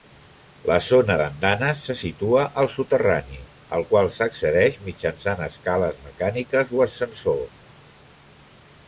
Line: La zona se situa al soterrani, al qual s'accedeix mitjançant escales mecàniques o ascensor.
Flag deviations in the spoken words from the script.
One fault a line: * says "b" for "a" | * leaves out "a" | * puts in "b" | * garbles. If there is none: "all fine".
* puts in "d'andanes"